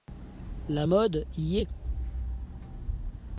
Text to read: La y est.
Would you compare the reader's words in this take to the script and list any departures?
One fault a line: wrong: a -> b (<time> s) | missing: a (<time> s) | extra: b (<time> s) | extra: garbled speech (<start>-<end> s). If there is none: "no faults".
extra: mode (0.8 s)